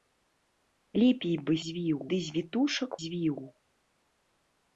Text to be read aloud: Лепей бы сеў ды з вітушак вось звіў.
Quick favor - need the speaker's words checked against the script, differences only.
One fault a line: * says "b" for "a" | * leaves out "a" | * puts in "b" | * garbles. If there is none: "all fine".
* says "звіў" for "сеў"
* leaves out "вось"